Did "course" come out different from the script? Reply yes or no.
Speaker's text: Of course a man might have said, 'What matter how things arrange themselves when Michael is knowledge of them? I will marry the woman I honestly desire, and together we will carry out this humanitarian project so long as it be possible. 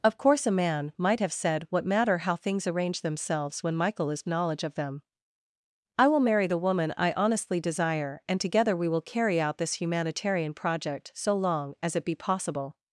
no